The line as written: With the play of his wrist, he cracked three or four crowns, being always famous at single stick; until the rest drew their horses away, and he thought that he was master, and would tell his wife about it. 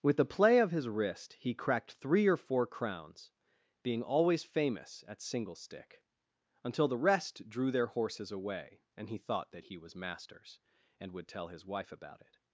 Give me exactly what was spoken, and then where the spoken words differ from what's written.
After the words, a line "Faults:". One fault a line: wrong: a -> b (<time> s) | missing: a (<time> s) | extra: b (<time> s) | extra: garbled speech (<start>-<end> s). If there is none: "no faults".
With the play of his wrist, he cracked three or four crowns, being always famous at single stick; until the rest drew their horses away, and he thought that he was masters, and would tell his wife about it.
Faults:
wrong: master -> masters (9.9 s)